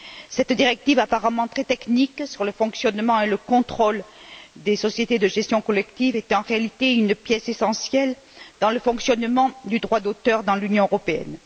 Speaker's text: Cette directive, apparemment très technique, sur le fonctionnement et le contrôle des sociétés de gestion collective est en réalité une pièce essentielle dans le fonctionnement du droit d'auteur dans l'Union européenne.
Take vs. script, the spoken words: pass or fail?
pass